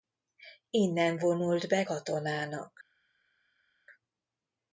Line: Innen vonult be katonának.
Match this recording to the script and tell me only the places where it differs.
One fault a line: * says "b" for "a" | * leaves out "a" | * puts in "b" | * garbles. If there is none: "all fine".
all fine